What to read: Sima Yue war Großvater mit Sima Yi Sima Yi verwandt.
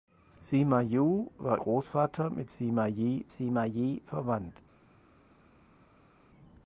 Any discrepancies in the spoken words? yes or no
no